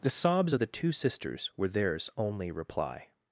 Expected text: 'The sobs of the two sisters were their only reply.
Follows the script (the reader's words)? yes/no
no